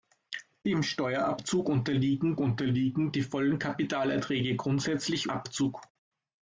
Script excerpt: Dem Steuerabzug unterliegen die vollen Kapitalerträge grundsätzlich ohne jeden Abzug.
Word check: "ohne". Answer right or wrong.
wrong